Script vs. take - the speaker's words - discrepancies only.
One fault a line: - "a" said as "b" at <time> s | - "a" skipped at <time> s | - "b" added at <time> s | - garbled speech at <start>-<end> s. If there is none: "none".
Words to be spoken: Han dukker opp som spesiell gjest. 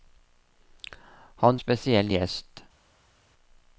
- "dukker opp som" skipped at 1.6 s